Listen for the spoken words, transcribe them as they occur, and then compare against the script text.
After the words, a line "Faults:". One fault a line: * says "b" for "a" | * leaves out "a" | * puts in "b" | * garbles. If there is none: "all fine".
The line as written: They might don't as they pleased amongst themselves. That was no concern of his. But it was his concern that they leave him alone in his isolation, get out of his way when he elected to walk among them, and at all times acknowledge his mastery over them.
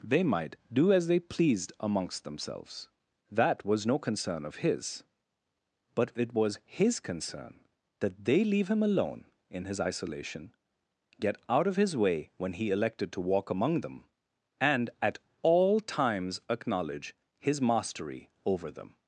They might do as they pleased amongst themselves. That was no concern of his. But it was his concern that they leave him alone in his isolation, get out of his way when he elected to walk among them, and at all times acknowledge his mastery over them.
Faults:
* says "do" for "don't"